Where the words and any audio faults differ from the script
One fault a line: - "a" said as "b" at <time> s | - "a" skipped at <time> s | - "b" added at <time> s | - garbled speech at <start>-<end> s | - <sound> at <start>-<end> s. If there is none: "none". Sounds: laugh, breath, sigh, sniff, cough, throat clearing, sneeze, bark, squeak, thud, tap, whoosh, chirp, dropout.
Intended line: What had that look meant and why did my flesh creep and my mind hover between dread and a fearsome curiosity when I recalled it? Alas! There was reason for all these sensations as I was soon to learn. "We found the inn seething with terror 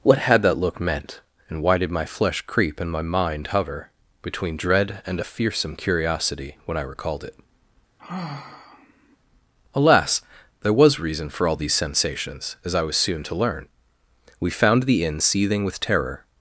- sigh at 8.0-9.2 s